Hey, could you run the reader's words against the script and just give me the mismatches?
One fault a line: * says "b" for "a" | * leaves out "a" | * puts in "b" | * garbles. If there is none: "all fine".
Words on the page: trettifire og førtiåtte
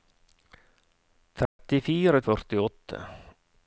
all fine